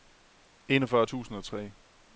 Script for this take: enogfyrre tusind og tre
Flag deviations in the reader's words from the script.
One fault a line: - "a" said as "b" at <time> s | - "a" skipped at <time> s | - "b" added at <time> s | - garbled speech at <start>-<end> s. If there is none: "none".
none